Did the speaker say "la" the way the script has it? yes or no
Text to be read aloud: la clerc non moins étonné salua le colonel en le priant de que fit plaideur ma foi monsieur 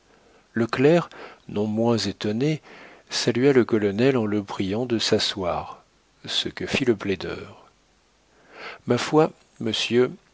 no